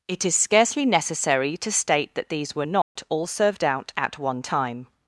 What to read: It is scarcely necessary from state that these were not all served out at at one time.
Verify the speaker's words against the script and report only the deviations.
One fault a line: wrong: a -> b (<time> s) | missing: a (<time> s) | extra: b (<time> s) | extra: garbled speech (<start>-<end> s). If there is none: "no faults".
wrong: from -> to (1.6 s)
missing: at (4.2 s)